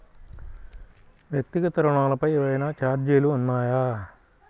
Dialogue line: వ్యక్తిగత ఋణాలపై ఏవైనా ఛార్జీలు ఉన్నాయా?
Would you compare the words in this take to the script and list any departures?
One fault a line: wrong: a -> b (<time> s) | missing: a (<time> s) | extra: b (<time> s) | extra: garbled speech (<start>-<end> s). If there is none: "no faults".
no faults